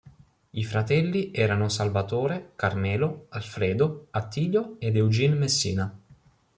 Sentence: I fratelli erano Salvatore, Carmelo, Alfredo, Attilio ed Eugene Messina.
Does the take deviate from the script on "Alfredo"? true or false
false